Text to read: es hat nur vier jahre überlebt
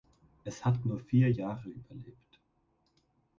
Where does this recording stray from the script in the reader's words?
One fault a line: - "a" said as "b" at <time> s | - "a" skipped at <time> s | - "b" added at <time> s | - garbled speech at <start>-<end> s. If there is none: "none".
none